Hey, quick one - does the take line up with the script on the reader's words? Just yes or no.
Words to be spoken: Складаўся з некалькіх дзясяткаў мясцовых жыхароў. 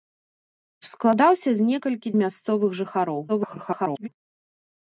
no